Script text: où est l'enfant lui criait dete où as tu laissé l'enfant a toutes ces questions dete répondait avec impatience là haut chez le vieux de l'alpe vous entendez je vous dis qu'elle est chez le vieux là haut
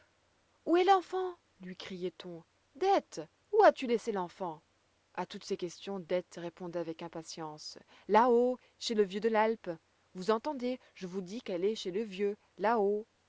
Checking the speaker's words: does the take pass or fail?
fail